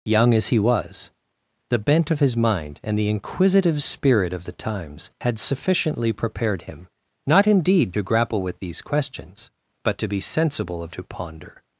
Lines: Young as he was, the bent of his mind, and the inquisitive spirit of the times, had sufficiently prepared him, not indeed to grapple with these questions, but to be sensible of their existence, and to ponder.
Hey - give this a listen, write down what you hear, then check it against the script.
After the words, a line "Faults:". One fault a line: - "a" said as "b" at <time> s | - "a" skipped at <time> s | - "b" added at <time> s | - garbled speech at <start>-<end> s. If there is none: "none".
Young as he was, the bent of his mind, and the inquisitive spirit of the times, had sufficiently prepared him, not indeed to grapple with these questions, but to be sensible of to ponder.
Faults:
- "their existence and" skipped at 10.9 s